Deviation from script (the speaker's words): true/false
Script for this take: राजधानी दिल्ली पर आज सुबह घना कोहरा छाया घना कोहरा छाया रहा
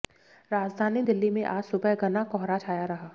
true